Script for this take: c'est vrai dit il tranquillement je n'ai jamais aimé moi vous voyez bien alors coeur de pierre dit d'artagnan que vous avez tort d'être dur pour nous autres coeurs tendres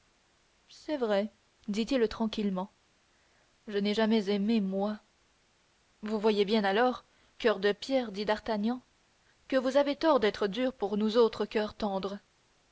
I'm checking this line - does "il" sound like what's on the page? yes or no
yes